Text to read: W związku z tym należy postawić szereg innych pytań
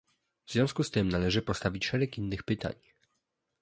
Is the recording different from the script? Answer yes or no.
no